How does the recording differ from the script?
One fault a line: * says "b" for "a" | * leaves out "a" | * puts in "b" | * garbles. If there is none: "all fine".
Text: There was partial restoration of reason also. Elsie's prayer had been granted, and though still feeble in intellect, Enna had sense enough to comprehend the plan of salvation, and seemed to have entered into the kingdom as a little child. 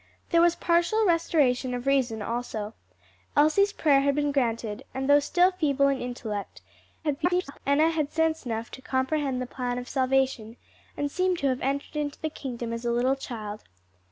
* garbles